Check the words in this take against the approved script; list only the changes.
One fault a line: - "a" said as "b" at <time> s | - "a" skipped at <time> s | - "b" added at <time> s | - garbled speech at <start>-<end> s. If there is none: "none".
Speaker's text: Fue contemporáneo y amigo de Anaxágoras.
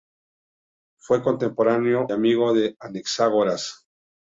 - "y" skipped at 2.1 s